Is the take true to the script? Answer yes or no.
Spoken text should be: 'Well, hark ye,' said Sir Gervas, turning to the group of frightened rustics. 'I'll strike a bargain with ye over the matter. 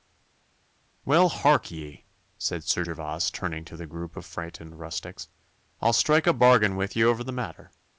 yes